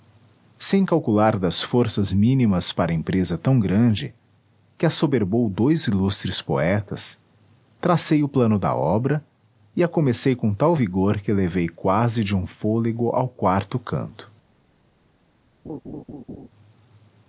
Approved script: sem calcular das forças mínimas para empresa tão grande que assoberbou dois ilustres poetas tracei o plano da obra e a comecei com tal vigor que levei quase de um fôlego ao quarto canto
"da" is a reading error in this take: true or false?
false